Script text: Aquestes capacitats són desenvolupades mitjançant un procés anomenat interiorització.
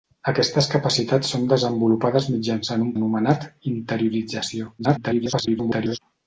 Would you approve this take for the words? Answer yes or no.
no